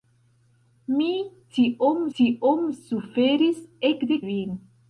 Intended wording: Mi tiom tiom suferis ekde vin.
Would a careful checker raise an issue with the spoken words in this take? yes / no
no